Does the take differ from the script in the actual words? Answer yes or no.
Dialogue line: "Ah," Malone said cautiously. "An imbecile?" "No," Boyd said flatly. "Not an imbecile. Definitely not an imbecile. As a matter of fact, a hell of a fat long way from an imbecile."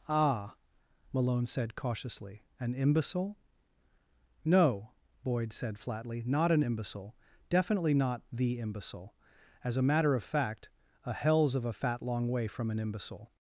yes